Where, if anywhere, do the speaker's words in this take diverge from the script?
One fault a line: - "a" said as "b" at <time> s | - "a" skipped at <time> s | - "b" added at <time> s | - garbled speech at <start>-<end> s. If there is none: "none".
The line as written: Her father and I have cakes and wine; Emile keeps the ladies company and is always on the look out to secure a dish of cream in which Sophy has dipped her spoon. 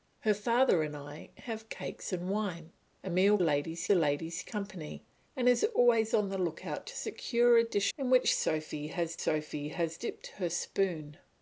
- "keeps" said as "ladies" at 3.4 s
- "of cream in which" said as "in which Sophy has" at 8.0 s